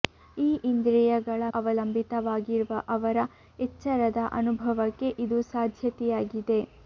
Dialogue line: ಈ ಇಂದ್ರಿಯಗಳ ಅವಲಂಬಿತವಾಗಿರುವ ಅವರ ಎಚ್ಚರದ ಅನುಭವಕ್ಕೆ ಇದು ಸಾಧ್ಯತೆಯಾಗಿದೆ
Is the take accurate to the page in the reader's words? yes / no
yes